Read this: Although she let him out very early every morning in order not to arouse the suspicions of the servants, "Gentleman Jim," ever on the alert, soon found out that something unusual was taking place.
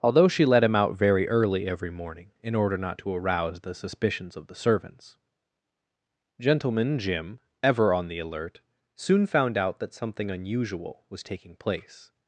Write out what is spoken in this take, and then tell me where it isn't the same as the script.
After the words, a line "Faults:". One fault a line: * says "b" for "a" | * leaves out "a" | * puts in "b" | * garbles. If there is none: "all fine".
Although she let him out very early every morning in order not to arouse the suspicions of the servants, "Gentleman Jim," ever on the alert, soon found out that something unusual was taking place.
Faults:
all fine